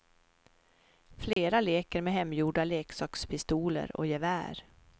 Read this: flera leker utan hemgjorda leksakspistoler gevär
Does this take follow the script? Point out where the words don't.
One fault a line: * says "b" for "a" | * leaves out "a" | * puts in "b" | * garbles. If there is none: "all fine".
* says "med" for "utan"
* puts in "och"